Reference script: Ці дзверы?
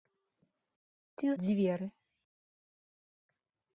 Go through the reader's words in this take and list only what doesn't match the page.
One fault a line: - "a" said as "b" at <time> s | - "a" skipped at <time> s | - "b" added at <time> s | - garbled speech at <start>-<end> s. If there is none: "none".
none